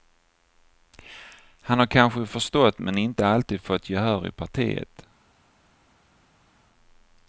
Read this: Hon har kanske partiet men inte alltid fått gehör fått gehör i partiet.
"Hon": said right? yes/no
no